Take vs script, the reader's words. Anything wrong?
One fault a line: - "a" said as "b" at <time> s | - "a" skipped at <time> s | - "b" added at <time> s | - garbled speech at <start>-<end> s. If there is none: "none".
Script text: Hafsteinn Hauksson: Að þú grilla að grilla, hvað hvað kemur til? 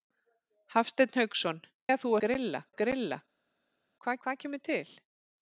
none